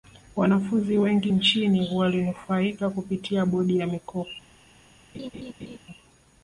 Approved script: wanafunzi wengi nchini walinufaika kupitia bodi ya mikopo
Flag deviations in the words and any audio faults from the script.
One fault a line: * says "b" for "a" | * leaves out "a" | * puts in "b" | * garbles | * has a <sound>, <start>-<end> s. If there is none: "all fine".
* has a laugh, 5.1-5.8 s